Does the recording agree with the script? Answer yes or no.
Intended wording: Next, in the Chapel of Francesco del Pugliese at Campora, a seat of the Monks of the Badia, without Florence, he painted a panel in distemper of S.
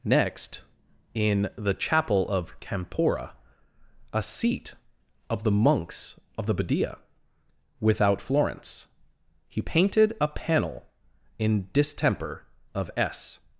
no